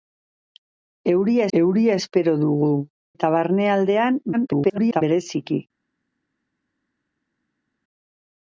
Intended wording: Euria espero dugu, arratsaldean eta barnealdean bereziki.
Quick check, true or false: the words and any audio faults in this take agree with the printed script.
false